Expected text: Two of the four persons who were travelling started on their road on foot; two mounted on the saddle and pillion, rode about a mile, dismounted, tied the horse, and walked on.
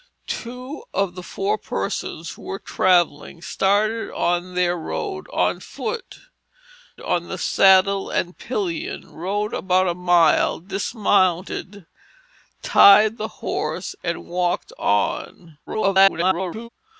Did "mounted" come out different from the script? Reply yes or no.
yes